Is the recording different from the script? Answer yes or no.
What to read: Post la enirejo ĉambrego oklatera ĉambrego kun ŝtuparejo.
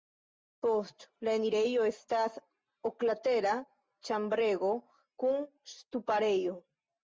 yes